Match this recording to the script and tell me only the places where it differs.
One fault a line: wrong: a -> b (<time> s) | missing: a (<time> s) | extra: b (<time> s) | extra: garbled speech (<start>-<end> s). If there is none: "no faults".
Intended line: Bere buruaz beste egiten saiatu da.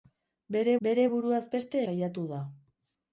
extra: bere (0.9 s)
missing: egiten (1.8 s)